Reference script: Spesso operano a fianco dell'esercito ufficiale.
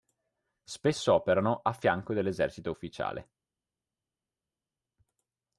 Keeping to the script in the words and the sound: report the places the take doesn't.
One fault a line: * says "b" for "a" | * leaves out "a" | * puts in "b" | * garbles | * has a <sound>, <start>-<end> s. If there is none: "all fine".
all fine